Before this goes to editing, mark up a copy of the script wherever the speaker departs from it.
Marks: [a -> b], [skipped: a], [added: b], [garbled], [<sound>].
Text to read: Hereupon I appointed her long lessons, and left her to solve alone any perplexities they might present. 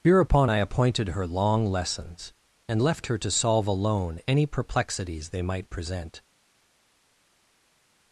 Hereupon I appointed her long lessons, and left her to solve alone any perplexities they might present.